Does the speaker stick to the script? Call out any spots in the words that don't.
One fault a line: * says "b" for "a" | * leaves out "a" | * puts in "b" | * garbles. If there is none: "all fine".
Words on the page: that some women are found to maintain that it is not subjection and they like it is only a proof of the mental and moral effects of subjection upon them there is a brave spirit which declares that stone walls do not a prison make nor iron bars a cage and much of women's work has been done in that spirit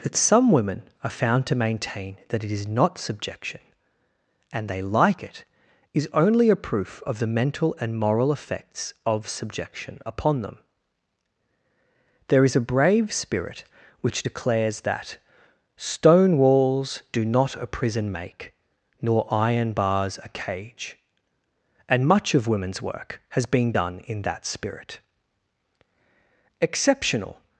* puts in "exceptional"